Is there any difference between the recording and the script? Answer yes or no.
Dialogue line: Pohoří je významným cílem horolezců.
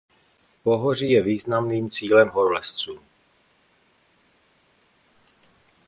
no